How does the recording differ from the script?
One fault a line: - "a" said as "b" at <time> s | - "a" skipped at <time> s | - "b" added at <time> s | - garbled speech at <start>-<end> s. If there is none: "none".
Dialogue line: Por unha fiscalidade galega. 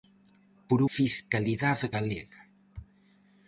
- "unha" skipped at 0.8 s